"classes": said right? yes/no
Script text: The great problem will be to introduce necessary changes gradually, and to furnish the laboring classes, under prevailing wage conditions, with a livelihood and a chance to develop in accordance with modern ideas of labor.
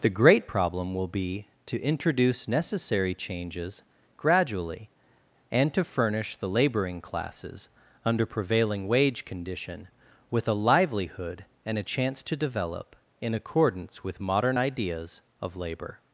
yes